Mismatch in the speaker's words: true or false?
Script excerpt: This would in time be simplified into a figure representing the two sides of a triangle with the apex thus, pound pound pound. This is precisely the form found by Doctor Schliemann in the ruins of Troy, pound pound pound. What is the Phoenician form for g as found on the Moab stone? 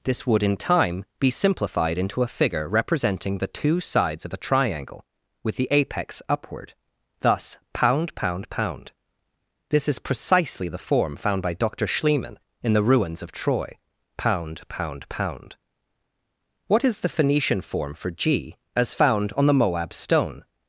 true